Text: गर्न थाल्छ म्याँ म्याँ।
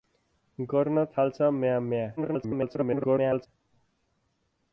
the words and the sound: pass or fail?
fail